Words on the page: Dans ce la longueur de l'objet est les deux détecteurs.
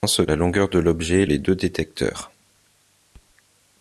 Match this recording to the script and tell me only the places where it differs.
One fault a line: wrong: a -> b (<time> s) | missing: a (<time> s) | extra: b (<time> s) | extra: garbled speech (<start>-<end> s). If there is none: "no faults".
no faults